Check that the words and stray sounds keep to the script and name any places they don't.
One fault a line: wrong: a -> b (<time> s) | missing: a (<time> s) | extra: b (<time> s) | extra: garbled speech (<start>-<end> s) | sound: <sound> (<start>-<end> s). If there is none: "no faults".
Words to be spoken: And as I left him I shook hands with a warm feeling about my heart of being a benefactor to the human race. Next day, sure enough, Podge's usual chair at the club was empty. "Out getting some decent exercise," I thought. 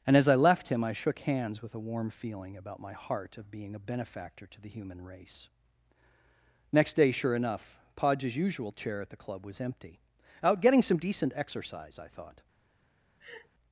sound: laugh (13.2-13.5 s)